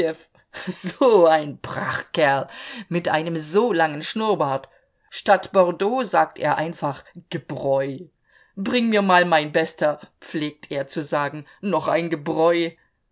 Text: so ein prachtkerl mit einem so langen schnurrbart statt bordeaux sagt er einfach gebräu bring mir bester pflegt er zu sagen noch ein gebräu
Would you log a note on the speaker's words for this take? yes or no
yes